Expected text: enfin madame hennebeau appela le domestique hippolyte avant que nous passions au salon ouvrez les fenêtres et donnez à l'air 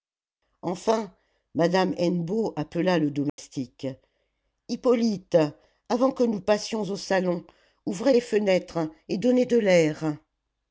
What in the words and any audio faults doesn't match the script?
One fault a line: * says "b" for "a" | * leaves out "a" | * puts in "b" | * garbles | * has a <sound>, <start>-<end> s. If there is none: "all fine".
* has a dropout, 3.3-3.4 s
* says "de" for "à"